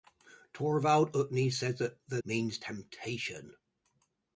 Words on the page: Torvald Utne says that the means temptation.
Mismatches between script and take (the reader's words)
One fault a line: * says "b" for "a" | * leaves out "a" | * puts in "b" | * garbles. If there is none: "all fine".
all fine